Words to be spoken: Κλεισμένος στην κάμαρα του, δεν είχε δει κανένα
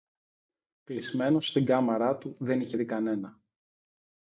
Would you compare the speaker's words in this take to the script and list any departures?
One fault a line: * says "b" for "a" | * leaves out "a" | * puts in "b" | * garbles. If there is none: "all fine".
all fine